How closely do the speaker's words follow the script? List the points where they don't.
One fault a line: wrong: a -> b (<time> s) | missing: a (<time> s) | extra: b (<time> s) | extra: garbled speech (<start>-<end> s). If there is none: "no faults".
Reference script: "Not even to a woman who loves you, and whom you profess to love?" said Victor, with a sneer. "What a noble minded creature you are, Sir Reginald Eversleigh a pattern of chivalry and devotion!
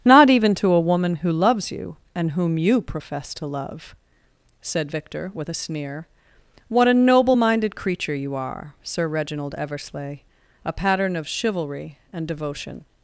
no faults